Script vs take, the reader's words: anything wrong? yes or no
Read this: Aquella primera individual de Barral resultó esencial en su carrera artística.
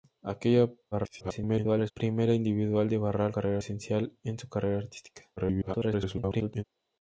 yes